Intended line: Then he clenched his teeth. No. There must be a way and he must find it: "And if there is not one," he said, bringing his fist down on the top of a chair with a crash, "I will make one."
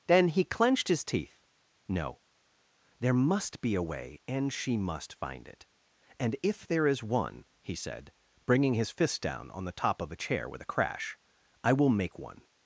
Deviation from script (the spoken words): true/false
true